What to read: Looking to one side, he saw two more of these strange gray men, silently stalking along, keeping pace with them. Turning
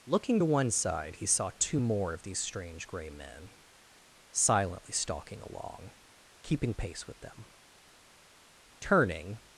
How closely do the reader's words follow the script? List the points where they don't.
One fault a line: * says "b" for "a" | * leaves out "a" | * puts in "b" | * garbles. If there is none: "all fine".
all fine